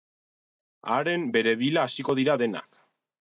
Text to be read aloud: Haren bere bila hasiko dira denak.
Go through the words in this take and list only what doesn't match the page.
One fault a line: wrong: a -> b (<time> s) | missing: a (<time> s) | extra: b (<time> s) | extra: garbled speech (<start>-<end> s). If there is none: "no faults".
no faults